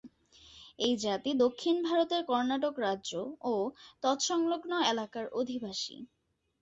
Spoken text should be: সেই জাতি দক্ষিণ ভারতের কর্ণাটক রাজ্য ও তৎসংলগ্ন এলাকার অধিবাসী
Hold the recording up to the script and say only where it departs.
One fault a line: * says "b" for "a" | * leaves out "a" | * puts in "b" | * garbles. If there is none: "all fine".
* says "এই" for "সেই"